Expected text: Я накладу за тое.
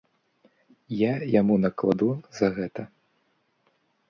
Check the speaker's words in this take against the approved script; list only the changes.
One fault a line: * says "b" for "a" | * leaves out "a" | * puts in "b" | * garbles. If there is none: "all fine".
* puts in "яму"
* says "гэта" for "тое"